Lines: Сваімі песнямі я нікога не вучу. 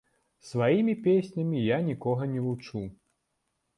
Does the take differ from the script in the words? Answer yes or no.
no